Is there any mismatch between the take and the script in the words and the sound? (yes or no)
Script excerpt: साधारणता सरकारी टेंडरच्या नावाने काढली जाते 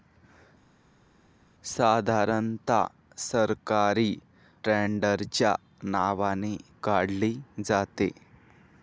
no